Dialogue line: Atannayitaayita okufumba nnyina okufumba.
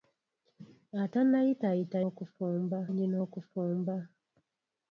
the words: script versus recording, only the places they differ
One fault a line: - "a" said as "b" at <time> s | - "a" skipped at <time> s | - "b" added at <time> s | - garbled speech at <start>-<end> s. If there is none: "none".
none